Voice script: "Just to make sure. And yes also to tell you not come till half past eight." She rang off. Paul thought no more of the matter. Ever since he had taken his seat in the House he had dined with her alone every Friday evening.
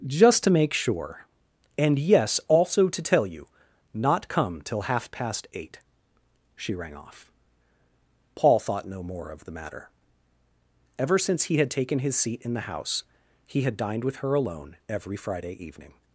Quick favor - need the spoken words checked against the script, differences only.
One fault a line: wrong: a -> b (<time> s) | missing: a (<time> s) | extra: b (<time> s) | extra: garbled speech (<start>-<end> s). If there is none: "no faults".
no faults